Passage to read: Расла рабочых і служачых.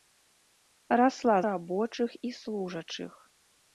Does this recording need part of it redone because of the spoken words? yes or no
no